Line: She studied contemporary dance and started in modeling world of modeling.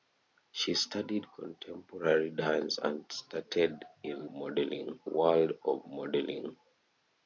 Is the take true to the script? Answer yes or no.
yes